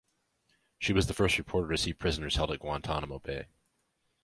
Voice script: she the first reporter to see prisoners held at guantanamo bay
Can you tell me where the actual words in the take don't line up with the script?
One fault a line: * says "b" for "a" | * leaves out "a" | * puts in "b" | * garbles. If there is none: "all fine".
* puts in "was"